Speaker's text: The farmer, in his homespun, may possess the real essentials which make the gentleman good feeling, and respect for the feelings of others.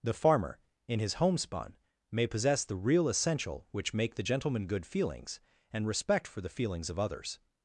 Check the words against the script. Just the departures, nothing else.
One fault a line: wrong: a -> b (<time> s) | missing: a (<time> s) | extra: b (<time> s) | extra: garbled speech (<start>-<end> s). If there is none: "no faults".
wrong: essentials -> essential (3.1 s)
wrong: feeling -> feelings (4.9 s)